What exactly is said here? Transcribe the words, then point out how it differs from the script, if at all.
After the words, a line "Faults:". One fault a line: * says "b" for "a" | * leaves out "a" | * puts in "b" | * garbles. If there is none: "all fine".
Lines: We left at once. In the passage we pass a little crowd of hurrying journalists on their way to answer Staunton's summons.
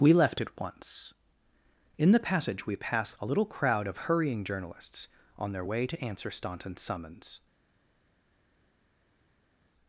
We left at once. In the passage we pass a little crowd of hurrying journalists on their way to answer Staunton's summons.
Faults:
all fine